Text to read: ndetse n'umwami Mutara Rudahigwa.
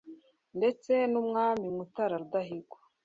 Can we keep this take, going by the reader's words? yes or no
yes